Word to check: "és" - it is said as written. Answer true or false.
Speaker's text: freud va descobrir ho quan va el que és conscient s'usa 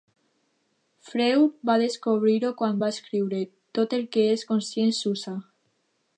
true